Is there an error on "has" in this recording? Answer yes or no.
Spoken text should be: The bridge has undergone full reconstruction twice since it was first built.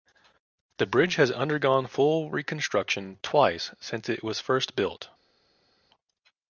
no